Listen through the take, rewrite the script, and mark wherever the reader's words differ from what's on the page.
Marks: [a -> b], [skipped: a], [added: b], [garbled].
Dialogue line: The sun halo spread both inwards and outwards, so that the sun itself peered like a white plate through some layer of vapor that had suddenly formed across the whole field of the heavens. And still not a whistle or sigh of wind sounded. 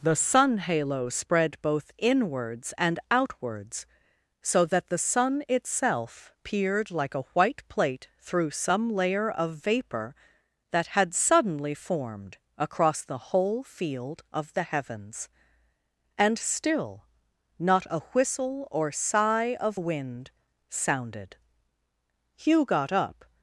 The sun halo spread both inwards and outwards, so that the sun itself peered like a white plate through some layer of vapor that had suddenly formed across the whole field of the heavens. And still not a whistle or sigh of wind sounded. [added: Hugh got up]